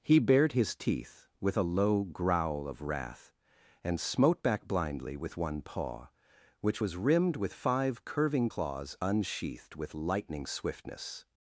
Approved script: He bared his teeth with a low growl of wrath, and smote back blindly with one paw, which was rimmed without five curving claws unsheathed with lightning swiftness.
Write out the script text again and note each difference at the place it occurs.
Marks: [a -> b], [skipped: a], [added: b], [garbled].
He bared his teeth with a low growl of wrath, and smote back blindly with one paw, which was rimmed [without -> with] five curving claws unsheathed with lightning swiftness.